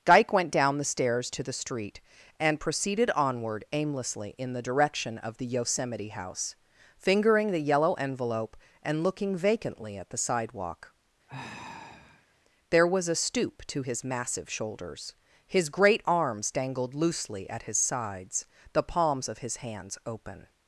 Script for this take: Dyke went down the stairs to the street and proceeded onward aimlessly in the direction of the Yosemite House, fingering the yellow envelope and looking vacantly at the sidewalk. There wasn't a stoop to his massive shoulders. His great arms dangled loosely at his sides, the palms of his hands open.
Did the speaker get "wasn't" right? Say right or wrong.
wrong